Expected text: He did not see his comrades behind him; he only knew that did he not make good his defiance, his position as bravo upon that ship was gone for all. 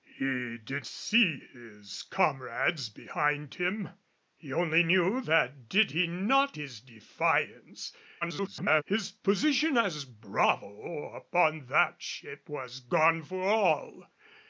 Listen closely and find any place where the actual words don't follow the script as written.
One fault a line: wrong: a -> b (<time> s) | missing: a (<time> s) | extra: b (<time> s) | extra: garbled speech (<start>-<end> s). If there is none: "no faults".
missing: not (0.9 s)
missing: make good (6.6 s)
extra: garbled speech (8.2-8.8 s)